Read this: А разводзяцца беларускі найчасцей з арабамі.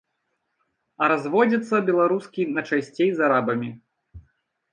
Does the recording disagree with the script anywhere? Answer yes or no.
no